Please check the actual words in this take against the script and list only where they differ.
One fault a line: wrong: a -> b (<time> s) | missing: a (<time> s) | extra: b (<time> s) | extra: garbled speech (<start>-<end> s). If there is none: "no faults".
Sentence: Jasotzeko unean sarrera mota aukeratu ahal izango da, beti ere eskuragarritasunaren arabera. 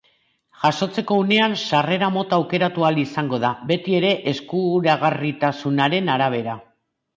no faults